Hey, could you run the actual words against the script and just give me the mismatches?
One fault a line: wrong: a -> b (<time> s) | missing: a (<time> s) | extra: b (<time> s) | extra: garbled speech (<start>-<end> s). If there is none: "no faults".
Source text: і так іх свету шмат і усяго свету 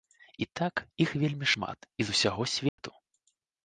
wrong: свету -> вельмі (1.2 s)
extra: з (2.1 s)